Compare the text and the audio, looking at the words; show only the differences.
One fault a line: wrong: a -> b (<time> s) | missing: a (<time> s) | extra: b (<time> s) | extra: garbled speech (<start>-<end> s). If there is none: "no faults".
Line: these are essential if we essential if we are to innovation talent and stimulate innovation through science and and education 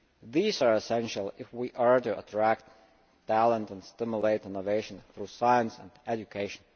missing: essential if we (1.7 s)
wrong: innovation -> attract (2.2 s)
missing: and (5.9 s)